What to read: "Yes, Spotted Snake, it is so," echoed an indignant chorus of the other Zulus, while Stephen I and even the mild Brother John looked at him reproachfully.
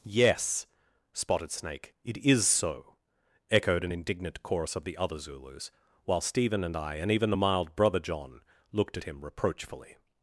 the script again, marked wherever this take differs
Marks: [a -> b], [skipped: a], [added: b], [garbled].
"Yes, Spotted Snake, it is so," echoed an indignant chorus of the other Zulus, while Stephen [added: and] I and even the mild Brother John looked at him reproachfully.